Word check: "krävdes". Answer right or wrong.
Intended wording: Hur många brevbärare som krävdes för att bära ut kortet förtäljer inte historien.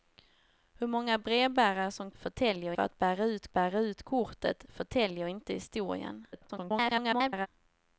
wrong